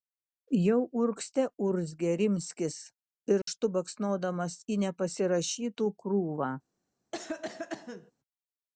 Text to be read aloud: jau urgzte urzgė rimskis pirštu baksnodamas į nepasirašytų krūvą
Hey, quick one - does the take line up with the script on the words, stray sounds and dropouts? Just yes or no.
no